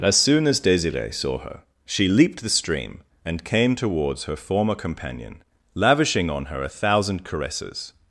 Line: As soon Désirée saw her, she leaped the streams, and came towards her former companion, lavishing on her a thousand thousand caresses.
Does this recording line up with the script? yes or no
no